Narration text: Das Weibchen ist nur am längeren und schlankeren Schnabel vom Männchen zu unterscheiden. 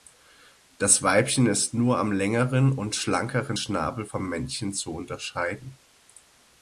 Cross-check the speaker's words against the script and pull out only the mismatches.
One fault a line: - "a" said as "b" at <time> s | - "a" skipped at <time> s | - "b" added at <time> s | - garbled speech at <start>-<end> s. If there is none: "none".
none